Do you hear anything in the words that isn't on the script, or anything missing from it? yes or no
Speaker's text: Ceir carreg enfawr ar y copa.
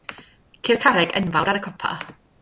no